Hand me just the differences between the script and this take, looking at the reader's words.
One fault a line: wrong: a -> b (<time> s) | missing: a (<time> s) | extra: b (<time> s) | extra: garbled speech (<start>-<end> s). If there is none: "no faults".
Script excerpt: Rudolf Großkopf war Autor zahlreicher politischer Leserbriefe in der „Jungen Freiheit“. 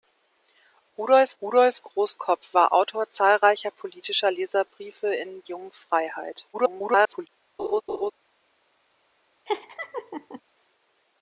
extra: rudolf (1.4 s)
missing: der (5.4 s)
extra: garbled speech (6.5-7.3 s)